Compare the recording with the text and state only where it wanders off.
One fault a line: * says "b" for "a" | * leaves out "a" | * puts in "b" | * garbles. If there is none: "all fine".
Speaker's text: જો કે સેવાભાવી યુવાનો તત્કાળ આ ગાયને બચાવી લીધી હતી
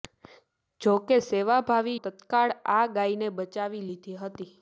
* leaves out "યુવાનો"